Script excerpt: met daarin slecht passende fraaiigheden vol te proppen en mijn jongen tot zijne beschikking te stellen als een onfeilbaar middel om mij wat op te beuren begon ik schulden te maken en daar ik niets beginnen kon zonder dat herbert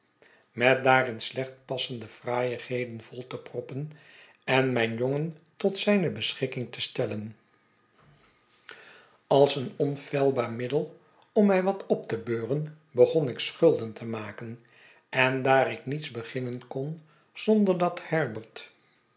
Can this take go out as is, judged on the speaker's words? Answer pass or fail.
pass